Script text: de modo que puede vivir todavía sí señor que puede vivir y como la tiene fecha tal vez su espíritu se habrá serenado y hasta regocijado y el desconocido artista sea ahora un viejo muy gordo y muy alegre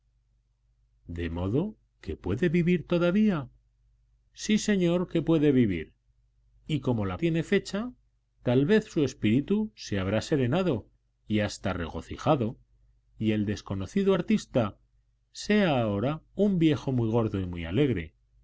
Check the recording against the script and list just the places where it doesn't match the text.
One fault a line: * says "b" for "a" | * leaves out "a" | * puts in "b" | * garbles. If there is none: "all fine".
all fine